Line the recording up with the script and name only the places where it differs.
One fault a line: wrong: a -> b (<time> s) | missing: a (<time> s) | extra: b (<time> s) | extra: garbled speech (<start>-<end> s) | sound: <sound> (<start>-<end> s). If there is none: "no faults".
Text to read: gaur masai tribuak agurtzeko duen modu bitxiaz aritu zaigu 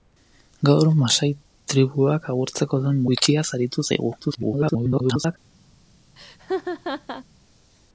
missing: modu (3.0 s)
extra: garbled speech (4.2-5.4 s)
sound: laugh (6.2-7.2 s)